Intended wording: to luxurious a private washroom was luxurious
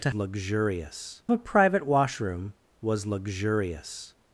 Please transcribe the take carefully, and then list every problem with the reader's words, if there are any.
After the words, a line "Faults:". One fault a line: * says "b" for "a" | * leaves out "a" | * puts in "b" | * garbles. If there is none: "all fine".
to luxurious a private washroom was luxurious
Faults:
all fine